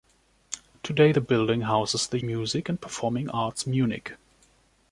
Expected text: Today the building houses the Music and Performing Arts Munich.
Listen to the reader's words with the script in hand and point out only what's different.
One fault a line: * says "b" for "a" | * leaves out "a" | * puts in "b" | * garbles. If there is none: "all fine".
all fine